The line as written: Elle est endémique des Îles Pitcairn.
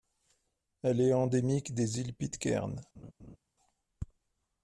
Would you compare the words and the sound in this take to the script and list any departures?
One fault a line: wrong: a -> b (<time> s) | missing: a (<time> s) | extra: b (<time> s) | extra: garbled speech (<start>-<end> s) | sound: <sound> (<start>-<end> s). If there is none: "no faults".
sound: laugh (2.9-3.4 s)